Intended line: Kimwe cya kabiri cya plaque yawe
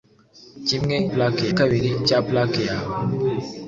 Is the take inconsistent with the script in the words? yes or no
yes